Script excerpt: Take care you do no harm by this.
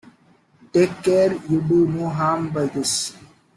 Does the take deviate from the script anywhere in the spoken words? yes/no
no